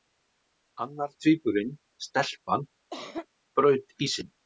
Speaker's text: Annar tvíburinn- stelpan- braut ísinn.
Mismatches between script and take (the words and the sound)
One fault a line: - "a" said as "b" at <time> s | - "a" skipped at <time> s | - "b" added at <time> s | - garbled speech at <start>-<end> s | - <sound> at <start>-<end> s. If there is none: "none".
- cough at 2.9-3.3 s